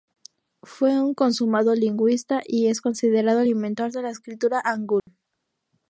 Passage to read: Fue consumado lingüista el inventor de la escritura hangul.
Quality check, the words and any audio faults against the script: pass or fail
fail